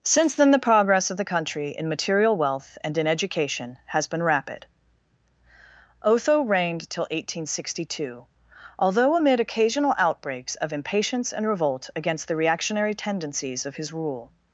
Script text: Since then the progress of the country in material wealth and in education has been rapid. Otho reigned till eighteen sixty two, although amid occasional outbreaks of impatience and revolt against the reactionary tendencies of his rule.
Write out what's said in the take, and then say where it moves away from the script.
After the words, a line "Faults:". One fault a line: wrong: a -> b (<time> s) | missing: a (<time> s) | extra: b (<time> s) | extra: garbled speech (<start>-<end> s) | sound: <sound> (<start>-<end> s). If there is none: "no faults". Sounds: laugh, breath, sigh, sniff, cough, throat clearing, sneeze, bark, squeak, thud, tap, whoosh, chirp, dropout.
Since then the progress of the country in material wealth and in education has been rapid. Otho reigned till eighteen sixty two, although amid occasional outbreaks of impatience and revolt against the reactionary tendencies of his rule.
Faults:
no faults